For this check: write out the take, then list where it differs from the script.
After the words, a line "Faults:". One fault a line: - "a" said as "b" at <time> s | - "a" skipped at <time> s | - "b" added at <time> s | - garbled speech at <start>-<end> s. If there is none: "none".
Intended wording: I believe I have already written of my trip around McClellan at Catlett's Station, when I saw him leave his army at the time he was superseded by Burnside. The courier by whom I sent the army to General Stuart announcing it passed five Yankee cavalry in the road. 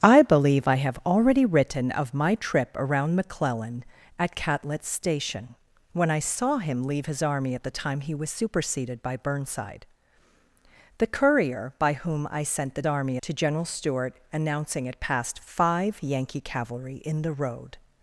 I believe I have already written of my trip around McClellan at Catlett's Station, when I saw him leave his army at the time he was superseded by Burnside. The courier by whom I sent the army to General Stuart announcing it passed five Yankee cavalry in the road.
Faults:
none